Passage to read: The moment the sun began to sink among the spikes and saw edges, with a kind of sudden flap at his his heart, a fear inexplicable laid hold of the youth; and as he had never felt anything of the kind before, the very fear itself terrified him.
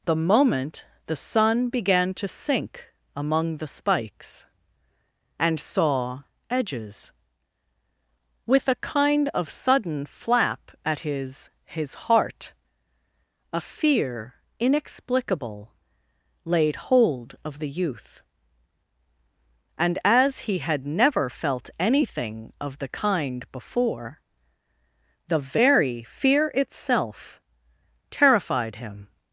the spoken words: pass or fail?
pass